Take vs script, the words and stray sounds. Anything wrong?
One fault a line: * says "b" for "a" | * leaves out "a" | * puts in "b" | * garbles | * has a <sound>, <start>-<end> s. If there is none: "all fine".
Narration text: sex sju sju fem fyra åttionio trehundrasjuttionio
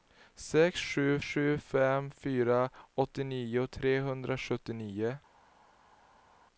all fine